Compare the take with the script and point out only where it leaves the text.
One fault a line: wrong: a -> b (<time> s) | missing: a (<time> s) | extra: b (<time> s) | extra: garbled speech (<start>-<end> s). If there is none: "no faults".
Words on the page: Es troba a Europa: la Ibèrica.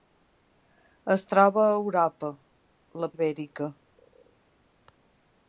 no faults